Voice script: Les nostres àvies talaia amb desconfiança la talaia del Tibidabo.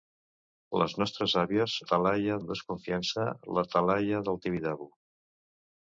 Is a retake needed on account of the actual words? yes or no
no